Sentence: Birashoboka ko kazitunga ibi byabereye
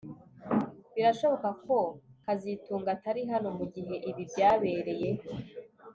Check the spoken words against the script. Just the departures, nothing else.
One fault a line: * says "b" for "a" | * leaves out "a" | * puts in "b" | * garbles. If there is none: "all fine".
* puts in "atari hano mugihe"